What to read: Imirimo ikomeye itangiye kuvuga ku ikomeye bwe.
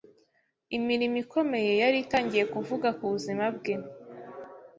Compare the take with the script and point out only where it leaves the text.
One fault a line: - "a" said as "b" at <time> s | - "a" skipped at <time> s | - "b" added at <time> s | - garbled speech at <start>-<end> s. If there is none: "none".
- "yari" added at 1.8 s
- "ikomeye" said as "buzima" at 3.1 s